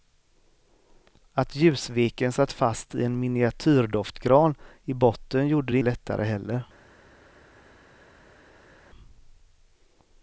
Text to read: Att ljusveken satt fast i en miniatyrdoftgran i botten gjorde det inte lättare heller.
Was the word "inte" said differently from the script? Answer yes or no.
yes